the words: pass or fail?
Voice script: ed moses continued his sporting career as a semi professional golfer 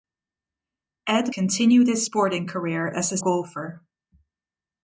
fail